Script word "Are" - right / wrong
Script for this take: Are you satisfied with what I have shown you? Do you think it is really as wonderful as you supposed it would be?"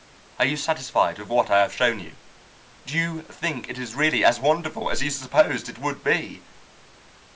right